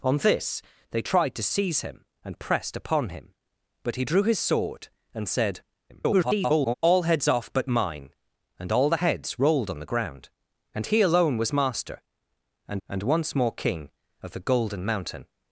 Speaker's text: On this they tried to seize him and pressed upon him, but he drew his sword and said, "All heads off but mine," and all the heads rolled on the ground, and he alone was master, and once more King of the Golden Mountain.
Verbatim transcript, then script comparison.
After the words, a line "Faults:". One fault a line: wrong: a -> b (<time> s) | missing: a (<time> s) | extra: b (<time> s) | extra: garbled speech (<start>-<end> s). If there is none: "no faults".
On this they tried to seize him and pressed upon him, but he drew his sword and said, [garbled] "All heads off but mine," and all the heads rolled on the ground, and he alone was master, and and once more King of the Golden Mountain.
Faults:
extra: garbled speech (5.9-6.7 s)
extra: and (12.9 s)